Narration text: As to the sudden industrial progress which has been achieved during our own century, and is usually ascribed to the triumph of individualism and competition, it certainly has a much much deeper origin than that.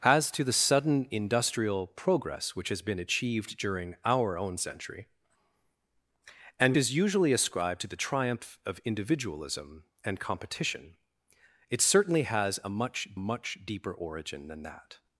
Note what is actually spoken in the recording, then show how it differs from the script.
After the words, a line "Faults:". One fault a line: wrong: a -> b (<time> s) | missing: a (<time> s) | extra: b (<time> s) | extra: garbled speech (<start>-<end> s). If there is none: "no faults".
As to the sudden industrial progress which has been achieved during our own century, and is usually ascribed to the triumph of individualism and competition, it certainly has a much much deeper origin than that.
Faults:
no faults